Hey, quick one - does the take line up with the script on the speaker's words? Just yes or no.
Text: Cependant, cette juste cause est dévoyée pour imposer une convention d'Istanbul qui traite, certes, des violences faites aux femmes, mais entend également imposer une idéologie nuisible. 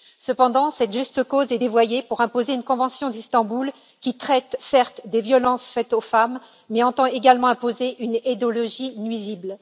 yes